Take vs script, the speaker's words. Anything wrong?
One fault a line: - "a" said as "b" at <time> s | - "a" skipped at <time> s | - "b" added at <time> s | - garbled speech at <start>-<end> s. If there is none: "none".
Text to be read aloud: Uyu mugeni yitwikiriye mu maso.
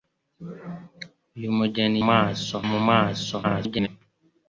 - "yitwikiriye" said as "maso" at 2.1 s
- garbled speech at 3.4-3.9 s